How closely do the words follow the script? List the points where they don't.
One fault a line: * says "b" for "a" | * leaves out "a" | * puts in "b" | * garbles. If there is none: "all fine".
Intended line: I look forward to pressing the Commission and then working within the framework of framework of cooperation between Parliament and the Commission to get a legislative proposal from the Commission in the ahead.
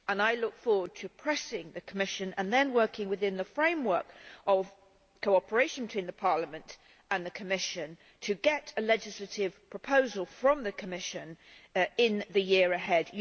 * leaves out "framework of"
* puts in "year"